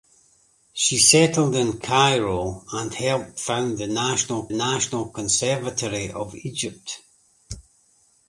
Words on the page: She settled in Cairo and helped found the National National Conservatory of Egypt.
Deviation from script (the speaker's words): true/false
false